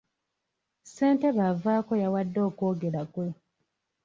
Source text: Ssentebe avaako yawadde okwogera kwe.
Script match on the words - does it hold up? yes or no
yes